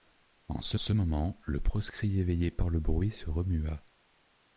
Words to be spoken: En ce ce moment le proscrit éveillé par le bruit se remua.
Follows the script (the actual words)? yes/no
yes